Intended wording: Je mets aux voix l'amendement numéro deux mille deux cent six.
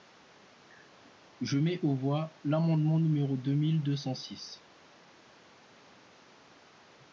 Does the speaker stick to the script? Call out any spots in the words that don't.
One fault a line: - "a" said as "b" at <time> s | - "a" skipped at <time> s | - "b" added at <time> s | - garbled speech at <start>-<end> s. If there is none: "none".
none